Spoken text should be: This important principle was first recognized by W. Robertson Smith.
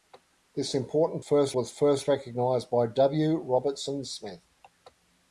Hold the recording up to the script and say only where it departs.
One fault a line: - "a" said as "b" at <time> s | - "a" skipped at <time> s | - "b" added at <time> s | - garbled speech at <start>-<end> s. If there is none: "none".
- "principle" said as "first" at 1.2 s